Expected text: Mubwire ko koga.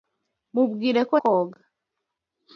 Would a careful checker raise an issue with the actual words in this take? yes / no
no